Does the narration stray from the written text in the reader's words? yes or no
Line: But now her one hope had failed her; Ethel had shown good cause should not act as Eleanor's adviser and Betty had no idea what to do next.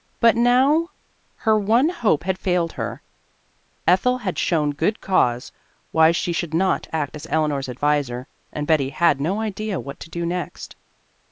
yes